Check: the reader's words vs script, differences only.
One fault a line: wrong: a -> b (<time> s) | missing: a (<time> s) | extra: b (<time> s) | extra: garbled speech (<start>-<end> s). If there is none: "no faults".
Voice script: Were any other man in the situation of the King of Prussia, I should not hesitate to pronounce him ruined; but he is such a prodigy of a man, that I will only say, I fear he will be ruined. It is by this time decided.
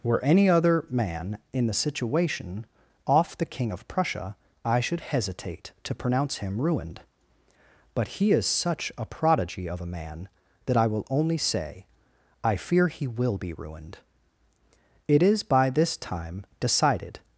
wrong: of -> off (3.0 s)
missing: not (5.0 s)